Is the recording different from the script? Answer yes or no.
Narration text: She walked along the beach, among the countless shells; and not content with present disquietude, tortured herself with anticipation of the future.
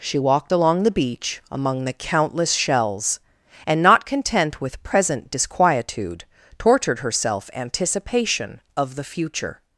yes